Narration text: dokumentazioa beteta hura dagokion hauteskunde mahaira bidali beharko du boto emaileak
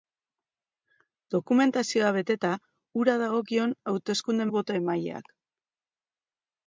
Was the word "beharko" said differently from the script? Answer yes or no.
yes